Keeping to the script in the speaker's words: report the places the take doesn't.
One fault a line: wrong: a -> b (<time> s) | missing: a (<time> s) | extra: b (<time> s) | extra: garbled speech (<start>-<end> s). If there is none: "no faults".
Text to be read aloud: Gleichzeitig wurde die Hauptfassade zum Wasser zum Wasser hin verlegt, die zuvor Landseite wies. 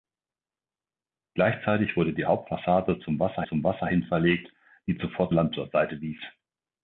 no faults